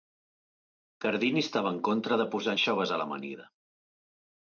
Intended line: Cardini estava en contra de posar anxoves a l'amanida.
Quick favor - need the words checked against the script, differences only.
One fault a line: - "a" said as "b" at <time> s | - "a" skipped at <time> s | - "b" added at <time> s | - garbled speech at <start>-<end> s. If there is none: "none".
none